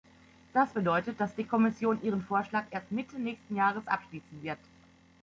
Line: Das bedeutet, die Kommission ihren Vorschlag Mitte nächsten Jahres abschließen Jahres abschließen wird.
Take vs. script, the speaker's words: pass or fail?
fail